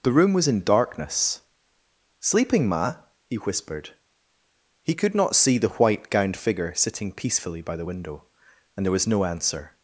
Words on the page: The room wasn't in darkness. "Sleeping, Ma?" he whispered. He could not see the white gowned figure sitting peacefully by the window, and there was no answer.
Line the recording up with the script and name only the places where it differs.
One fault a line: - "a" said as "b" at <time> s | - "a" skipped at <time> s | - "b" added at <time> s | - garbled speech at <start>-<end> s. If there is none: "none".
- "wasn't" said as "was" at 0.3 s